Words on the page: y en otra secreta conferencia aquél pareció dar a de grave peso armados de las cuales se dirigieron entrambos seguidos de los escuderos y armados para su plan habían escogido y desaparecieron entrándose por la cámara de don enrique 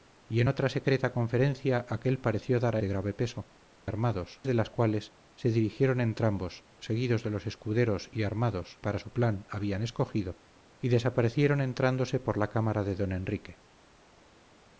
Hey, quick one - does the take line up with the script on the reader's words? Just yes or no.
yes